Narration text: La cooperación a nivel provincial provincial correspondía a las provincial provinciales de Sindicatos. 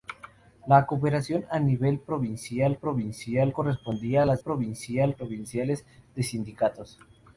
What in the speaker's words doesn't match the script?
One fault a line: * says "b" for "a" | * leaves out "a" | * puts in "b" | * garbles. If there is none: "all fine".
all fine